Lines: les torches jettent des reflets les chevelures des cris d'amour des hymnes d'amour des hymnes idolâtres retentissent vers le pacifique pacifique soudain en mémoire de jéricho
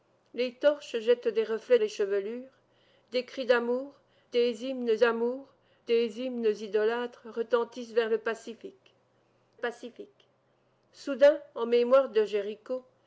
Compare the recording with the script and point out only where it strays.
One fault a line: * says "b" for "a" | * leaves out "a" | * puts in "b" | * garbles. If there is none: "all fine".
all fine